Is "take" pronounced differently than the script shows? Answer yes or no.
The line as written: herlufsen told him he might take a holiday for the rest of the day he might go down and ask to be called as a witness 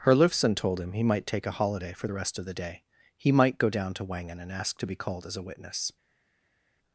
no